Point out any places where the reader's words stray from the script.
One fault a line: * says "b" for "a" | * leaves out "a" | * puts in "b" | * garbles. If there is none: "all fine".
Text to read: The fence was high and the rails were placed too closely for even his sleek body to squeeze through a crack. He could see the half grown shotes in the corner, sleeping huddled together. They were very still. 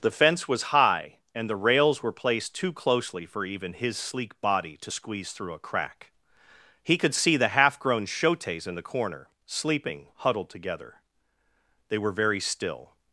all fine